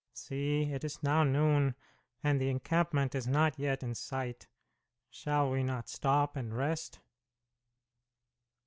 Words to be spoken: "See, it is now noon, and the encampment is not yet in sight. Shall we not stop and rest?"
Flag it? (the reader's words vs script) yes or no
no